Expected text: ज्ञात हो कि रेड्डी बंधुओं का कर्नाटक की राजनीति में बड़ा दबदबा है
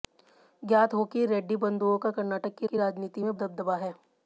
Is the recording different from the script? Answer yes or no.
yes